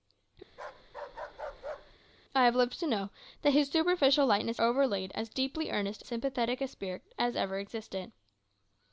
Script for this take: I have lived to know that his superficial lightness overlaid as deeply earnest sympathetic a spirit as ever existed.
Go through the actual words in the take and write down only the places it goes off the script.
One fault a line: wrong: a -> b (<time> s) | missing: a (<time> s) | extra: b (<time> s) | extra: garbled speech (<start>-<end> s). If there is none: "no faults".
no faults